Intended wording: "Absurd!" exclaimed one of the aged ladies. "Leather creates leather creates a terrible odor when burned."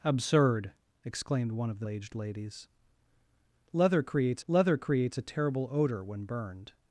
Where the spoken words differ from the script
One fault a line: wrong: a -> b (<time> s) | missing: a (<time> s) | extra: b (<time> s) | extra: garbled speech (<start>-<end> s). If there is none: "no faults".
no faults